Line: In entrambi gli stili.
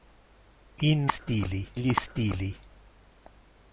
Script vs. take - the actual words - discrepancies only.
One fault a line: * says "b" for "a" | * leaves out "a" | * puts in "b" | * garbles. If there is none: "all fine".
* says "stili" for "entrambi"